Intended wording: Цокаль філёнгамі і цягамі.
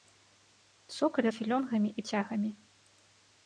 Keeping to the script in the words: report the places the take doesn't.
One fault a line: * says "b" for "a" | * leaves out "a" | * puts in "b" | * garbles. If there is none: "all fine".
all fine